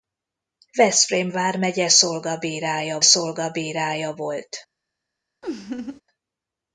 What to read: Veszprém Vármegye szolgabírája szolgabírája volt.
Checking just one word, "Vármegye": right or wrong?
right